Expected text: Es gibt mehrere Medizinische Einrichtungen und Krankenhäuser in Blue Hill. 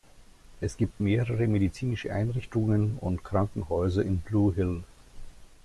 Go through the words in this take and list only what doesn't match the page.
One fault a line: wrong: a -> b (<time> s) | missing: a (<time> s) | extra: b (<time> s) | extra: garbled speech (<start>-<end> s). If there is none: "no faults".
no faults